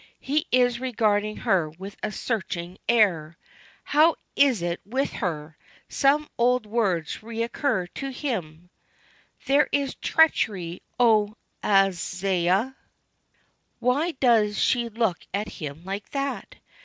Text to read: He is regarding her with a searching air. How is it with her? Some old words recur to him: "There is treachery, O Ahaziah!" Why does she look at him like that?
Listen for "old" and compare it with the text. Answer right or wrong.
right